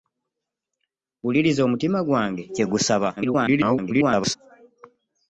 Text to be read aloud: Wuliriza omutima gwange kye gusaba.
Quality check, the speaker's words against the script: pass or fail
fail